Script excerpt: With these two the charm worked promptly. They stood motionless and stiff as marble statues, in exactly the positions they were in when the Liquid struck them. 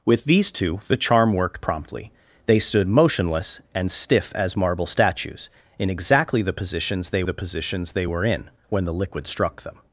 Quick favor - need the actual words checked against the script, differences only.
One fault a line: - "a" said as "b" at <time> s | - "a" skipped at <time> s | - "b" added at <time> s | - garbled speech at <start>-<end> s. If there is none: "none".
- "the positions they" added at 7.2 s